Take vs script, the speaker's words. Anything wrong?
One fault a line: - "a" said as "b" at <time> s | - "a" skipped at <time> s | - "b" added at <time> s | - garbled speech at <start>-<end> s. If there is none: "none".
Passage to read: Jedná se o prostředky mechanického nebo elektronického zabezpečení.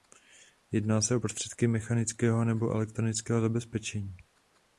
none